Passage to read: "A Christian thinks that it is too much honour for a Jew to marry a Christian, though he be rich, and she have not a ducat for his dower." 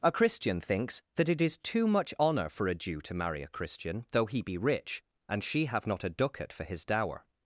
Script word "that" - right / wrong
right